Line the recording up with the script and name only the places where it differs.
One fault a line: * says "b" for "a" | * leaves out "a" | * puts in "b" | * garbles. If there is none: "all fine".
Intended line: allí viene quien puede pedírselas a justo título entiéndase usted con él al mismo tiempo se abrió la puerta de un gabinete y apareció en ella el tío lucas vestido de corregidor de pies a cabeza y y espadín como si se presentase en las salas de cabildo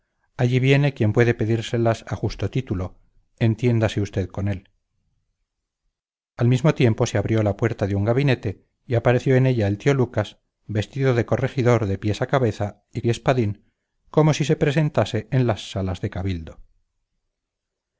all fine